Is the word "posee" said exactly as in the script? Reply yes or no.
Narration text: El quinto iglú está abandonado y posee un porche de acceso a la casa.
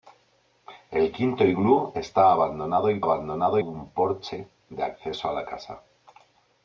no